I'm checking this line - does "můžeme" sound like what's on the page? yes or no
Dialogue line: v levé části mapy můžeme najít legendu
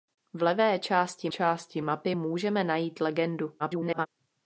yes